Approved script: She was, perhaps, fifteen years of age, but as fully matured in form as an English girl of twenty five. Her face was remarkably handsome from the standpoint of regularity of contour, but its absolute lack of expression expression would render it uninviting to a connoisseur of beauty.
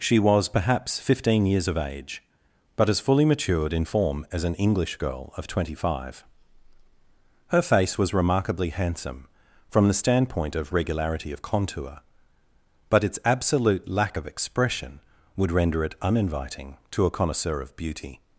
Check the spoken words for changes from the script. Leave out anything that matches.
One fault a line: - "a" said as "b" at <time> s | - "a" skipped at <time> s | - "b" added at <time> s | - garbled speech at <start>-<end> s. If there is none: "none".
- "expression" skipped at 15.0 s